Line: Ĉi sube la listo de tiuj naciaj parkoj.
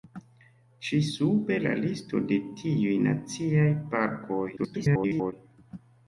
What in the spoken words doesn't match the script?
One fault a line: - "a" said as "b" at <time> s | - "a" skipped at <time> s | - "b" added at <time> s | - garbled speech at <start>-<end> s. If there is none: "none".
- garbled speech at 4.6-5.3 s